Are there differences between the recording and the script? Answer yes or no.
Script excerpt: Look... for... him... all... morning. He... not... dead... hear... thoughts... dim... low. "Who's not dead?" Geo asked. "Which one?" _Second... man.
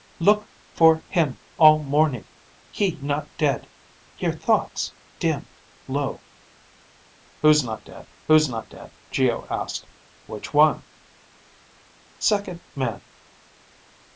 yes